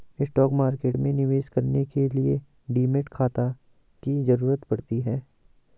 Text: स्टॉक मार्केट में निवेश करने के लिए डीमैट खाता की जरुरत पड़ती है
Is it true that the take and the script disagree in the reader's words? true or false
false